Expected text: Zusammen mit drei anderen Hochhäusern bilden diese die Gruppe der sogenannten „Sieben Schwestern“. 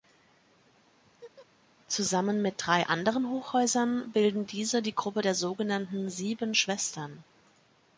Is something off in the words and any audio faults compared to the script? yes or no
yes